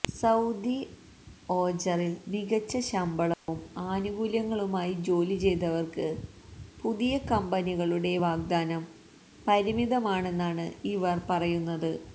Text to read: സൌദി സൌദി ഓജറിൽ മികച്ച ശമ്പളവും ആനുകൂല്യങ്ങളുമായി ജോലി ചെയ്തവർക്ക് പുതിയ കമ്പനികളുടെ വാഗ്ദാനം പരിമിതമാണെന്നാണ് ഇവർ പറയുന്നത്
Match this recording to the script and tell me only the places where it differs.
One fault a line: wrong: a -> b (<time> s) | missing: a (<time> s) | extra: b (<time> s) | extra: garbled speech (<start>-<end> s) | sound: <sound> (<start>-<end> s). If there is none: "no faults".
missing: സൌദി (0.8 s)
sound: dropout (3.3-3.5 s)